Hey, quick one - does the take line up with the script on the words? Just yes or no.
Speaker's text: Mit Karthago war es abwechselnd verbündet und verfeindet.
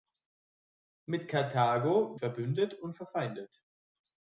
no